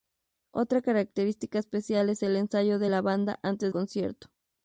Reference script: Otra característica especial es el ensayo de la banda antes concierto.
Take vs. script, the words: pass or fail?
pass